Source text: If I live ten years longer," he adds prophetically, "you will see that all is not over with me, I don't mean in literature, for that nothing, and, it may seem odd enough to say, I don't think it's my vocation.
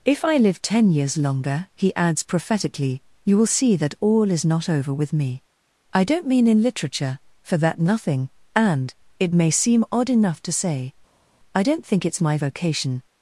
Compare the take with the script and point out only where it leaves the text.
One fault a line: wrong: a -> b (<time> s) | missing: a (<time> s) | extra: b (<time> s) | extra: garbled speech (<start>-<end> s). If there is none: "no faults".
no faults